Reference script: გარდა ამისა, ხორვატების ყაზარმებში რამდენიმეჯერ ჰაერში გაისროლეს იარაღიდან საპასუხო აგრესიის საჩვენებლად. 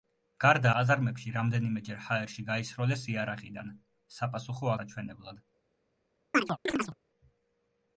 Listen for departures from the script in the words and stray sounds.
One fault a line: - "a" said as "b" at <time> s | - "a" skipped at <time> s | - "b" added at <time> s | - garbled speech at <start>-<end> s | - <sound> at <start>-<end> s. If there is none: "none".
- "ამისა ხორვატების" skipped at 0.7 s
- "აგრესიის" skipped at 4.7 s
- chirp at 6.3-7.0 s